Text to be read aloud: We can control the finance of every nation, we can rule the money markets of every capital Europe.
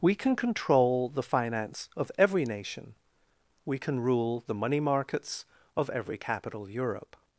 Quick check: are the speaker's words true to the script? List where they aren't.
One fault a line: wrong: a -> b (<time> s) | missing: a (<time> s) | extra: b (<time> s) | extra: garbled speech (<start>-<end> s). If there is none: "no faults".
no faults